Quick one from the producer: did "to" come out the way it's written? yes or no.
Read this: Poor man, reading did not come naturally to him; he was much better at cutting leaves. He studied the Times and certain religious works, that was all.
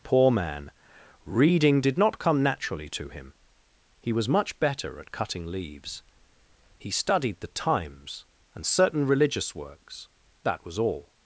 yes